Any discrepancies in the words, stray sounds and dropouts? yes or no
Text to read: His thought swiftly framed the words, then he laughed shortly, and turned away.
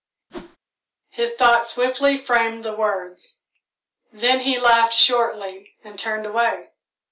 yes